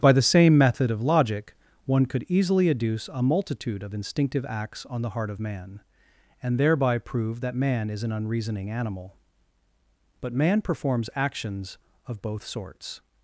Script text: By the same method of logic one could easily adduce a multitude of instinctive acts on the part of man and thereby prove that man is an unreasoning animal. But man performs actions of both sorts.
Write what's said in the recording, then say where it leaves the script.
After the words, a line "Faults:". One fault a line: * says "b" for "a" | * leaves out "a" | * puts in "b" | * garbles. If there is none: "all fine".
By the same method of logic one could easily adduce a multitude of instinctive acts on the heart of man and thereby prove that man is an unreasoning animal. But man performs actions of both sorts.
Faults:
* says "heart" for "part"